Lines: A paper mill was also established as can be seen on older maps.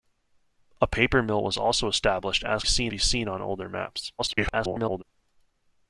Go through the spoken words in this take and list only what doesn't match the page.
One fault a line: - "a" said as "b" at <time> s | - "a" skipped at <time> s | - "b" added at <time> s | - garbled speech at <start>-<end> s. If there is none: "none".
- "can" said as "seen" at 2.6 s
- garbled speech at 4.2-5.0 s